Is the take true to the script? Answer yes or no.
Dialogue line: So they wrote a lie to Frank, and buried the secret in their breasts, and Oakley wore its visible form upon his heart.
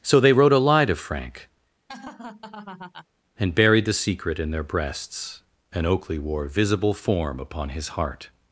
no